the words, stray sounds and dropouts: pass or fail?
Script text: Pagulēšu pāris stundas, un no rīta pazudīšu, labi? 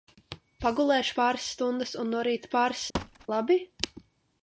fail